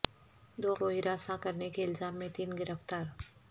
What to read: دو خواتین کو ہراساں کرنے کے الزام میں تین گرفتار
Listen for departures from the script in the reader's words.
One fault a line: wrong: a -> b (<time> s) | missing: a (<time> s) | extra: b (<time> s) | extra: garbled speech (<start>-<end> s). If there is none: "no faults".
missing: خواتین (0.7 s)